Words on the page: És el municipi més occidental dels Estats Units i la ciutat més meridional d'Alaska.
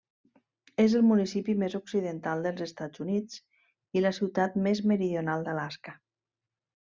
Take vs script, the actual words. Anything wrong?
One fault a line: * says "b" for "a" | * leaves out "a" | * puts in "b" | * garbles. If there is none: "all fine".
all fine